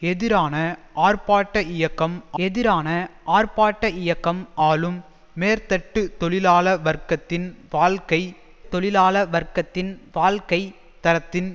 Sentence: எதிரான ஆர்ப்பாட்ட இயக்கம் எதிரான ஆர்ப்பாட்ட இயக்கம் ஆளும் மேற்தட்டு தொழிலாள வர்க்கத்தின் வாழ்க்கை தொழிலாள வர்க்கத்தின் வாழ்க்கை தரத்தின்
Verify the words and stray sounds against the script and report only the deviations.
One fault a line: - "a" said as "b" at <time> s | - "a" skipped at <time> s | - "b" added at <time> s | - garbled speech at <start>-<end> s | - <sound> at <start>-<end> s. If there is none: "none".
none